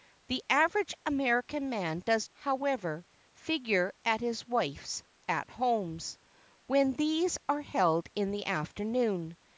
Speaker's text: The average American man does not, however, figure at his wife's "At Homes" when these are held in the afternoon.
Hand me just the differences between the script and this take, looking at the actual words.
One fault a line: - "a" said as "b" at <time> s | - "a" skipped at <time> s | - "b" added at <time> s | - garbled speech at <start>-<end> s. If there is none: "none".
- "not" skipped at 2.3 s